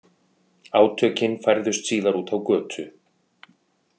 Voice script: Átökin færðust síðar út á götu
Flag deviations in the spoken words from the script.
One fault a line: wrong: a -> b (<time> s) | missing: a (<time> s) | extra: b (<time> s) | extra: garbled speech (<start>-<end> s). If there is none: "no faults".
no faults